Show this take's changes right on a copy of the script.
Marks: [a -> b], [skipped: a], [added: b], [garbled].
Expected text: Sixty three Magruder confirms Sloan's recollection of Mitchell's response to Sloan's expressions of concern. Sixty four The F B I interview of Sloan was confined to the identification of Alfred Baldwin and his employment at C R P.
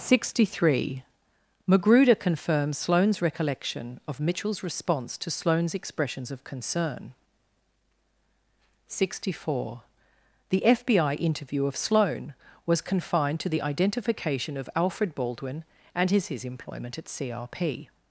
Sixty three Magruder confirms Sloan's recollection of Mitchell's response to Sloan's expressions of concern. Sixty four The F B I interview of Sloan was confined to the identification of Alfred Baldwin and his [added: his] employment at C R P.